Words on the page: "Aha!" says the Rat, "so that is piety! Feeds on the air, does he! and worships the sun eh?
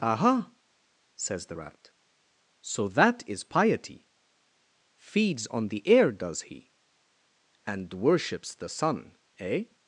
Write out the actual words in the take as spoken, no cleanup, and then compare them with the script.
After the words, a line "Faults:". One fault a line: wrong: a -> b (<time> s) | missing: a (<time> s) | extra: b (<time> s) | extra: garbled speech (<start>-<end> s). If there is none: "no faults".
"Aha!" says the Rat, "so that is piety! Feeds on the air, does he! and worships the sun eh?
Faults:
no faults